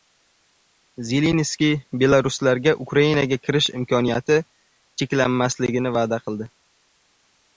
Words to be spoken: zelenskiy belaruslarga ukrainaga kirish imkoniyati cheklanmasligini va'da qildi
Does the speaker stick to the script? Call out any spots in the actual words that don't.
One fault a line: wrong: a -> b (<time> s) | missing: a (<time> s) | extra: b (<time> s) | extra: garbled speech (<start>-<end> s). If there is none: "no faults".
no faults